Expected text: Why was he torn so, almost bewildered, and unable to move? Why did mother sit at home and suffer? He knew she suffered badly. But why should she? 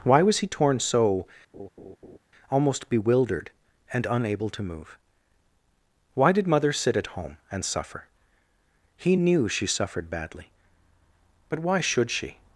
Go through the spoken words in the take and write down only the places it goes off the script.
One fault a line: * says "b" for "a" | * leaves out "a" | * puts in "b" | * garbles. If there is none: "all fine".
all fine